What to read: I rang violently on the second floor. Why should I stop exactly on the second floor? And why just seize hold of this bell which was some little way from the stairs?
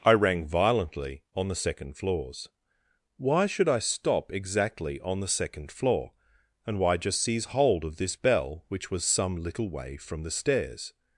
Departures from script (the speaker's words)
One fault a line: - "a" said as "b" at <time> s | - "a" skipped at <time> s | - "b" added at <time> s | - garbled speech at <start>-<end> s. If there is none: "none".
- "floor" said as "floors" at 1.9 s